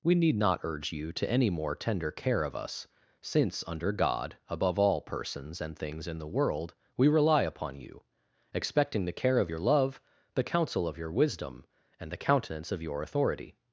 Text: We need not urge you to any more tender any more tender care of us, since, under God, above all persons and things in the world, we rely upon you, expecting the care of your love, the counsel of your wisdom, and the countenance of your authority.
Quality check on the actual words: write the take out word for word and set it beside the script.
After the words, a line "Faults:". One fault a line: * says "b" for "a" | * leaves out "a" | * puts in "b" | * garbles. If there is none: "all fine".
We need not urge you to any more tender care of us, since, under God, above all persons and things in the world, we rely upon you, expecting the care of your love, the counsel of your wisdom, and the countenance of your authority.
Faults:
* leaves out "any more tender"